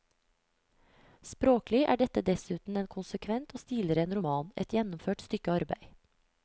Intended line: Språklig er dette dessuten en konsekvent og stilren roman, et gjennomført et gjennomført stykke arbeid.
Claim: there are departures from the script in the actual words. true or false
true